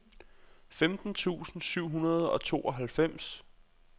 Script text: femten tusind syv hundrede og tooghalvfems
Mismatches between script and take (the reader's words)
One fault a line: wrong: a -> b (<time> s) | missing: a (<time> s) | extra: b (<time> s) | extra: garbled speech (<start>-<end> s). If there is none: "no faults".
no faults